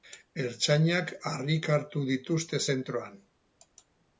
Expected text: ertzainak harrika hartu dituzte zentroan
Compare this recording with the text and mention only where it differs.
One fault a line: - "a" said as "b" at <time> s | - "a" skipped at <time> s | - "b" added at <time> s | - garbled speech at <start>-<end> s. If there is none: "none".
none